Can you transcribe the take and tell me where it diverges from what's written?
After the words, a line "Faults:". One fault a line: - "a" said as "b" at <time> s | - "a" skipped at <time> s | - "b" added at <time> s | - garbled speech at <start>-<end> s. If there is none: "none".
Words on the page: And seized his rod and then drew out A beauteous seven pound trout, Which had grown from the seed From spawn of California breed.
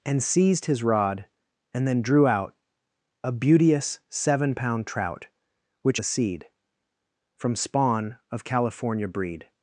And seized his rod and then drew out A beauteous seven pound trout, Which the seed From spawn of California breed.
Faults:
- "had grown from" skipped at 6.0 s